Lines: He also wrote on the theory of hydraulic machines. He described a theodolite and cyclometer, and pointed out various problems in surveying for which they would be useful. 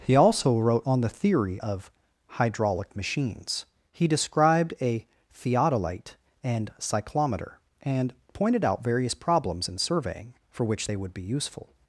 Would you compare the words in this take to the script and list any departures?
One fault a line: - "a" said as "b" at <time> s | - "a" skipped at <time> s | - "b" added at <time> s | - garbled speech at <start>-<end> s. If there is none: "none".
none